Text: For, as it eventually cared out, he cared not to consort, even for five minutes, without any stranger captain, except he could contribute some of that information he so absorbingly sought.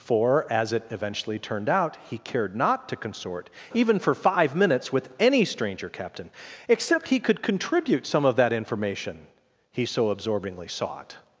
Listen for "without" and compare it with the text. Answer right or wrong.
wrong